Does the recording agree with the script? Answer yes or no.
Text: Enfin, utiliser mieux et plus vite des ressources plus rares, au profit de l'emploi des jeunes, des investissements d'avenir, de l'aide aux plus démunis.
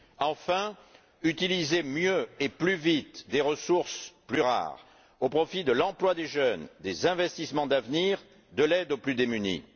yes